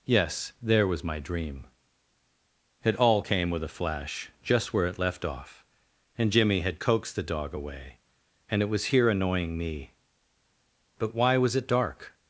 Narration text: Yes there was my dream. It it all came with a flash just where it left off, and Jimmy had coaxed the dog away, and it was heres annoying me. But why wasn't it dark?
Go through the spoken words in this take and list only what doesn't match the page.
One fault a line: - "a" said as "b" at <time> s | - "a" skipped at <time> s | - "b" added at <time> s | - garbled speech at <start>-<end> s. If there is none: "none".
- "it" skipped at 3.0 s
- "heres" said as "here" at 8.9 s
- "wasn't" said as "was" at 11.4 s